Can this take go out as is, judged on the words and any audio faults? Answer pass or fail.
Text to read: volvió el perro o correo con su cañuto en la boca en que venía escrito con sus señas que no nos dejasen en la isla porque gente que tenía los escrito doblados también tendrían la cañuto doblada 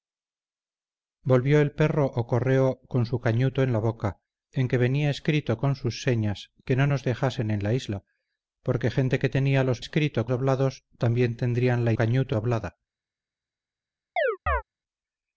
fail